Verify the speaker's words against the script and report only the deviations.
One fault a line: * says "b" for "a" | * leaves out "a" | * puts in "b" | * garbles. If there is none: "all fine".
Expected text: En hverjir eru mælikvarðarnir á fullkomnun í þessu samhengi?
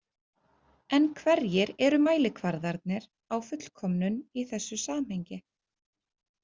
all fine